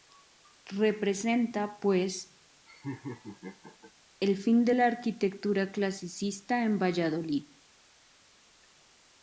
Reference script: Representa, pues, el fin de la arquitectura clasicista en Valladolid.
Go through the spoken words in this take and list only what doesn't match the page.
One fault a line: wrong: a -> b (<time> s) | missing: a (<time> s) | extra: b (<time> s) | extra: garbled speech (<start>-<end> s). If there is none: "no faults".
no faults